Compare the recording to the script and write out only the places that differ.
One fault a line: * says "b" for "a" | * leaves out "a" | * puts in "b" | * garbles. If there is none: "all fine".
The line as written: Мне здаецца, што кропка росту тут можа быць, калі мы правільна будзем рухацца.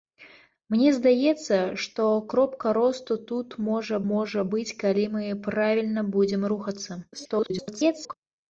* puts in "можа"
* garbles